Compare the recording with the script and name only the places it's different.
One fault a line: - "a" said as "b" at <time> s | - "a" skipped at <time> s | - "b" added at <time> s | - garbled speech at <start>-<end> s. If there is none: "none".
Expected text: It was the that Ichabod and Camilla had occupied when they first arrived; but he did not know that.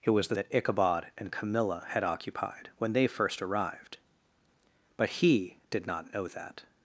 none